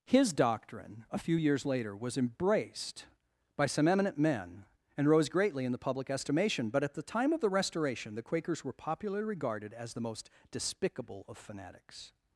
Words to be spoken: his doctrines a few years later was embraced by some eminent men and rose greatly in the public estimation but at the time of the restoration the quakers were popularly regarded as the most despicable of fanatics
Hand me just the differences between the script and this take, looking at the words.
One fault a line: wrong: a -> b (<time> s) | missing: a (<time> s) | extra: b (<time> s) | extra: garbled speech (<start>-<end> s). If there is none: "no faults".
wrong: doctrines -> doctrine (0.3 s)